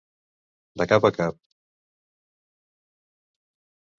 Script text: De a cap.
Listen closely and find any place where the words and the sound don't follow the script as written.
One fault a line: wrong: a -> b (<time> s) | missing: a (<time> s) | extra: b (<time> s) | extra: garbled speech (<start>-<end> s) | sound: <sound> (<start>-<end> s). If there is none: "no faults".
extra: cap (0.9 s)